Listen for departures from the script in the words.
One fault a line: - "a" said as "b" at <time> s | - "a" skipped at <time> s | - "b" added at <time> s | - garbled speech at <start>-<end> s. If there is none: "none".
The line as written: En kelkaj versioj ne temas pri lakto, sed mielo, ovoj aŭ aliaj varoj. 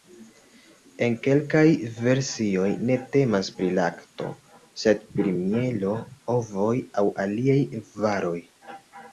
- "pri" added at 5.2 s